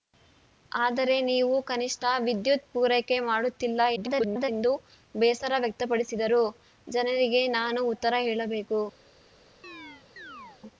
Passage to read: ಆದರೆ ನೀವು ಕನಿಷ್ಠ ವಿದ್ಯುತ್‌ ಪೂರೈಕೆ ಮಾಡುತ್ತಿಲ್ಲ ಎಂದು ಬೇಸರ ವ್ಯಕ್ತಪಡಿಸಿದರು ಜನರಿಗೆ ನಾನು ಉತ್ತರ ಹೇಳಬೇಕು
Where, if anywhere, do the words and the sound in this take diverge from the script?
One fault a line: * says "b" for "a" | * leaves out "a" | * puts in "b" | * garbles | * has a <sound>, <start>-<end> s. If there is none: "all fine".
* garbles
* has a chirp, 9.6-10.6 s